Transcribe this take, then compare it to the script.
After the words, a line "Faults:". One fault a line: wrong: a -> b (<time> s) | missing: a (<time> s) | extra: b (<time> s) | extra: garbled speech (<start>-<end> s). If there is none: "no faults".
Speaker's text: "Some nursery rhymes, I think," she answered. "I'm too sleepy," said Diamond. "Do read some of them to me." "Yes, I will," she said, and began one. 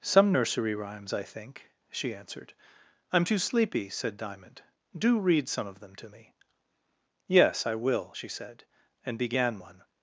"Some nursery rhymes, I think," she answered. "I'm too sleepy," said Diamond. "Do read some of them to me." "Yes, I will," she said, and began one.
Faults:
no faults